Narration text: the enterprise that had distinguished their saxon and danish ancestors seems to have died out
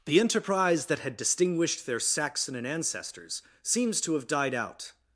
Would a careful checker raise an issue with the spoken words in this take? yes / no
yes